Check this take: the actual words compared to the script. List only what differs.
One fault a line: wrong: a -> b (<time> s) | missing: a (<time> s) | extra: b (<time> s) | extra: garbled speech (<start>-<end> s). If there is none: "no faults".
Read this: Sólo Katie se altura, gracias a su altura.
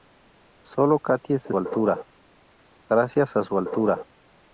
no faults